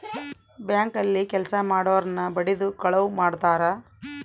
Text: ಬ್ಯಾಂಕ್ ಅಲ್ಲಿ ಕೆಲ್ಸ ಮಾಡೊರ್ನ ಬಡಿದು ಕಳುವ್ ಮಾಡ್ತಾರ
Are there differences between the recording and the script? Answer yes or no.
no